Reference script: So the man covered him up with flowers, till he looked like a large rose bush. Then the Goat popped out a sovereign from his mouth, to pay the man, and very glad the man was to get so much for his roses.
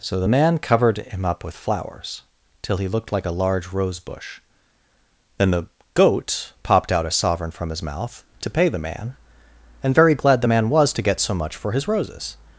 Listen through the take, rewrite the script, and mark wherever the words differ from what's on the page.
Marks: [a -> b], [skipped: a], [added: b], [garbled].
So the man covered him up with flowers, till he looked like a large rose bush. Then the Goat popped out a sovereign from his mouth, to pay the man, and very glad the man was to get so much for his roses.